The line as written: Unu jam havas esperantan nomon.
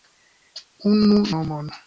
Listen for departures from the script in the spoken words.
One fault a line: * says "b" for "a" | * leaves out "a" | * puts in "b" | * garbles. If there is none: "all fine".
* leaves out "jam havas esperantan"